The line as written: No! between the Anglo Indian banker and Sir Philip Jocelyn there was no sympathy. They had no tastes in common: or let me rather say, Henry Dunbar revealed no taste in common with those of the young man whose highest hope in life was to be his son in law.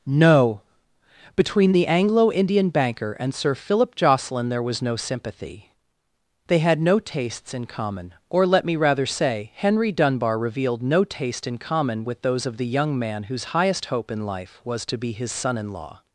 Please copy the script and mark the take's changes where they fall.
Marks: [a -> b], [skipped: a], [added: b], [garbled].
No! between the Anglo Indian banker and Sir Philip Jocelyn there was no sympathy. They had no tastes in common: or let me rather say, Henry Dunbar revealed no taste in common with those of the young man whose highest hope in life was to be his son in law.